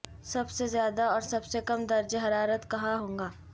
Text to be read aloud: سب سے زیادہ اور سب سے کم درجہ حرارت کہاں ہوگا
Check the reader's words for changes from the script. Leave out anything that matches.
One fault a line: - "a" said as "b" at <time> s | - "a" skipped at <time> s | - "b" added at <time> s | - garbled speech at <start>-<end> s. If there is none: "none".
none